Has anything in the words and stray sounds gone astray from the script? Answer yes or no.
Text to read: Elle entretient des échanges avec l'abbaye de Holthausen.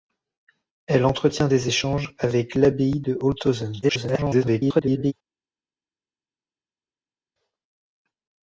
yes